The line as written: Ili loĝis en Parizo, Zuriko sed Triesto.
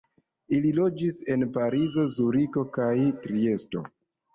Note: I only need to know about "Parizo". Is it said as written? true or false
true